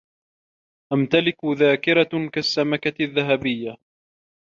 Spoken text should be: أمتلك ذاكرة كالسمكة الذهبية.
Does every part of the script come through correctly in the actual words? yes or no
yes